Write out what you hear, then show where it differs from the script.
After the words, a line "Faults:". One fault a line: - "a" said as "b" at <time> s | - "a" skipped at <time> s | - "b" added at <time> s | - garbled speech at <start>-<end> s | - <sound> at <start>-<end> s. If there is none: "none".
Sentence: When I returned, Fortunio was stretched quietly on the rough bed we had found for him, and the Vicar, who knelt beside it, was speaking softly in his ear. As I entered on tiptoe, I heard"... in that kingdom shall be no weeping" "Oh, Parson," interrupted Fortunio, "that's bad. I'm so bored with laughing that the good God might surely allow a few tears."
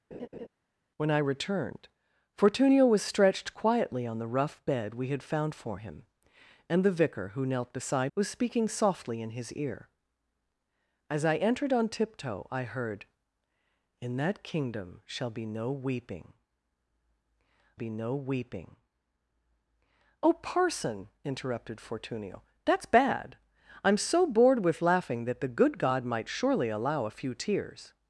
When I returned, Fortunio was stretched quietly on the rough bed we had found for him, and the Vicar, who knelt beside was speaking softly in his ear. As I entered on tiptoe, I heard"... in that kingdom shall be no weeping be no weeping" "Oh, Parson," interrupted Fortunio, "that's bad. I'm so bored with laughing that the good God might surely allow a few tears."
Faults:
- laugh at 0.1-0.5 s
- "it" skipped at 8.1 s
- "be no weeping" added at 17.7 s